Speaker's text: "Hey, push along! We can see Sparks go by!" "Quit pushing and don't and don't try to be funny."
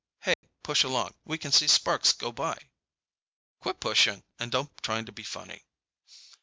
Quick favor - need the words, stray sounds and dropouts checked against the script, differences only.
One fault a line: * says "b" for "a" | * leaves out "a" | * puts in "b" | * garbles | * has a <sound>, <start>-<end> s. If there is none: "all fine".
* has a dropout, 0.3-0.4 s
* leaves out "and don't"